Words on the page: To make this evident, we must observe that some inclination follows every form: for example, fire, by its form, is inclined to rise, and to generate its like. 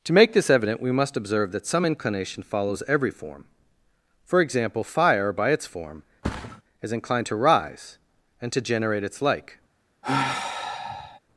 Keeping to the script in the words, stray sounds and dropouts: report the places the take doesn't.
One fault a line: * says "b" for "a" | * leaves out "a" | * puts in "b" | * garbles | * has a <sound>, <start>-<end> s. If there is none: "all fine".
* has a thud, 6.2-6.6 s
* has a sigh, 10.0-11.2 s